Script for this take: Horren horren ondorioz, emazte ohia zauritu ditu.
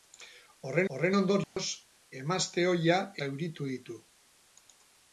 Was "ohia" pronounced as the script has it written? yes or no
yes